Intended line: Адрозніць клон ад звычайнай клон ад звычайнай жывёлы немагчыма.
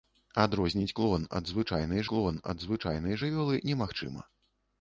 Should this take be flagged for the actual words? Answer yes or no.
no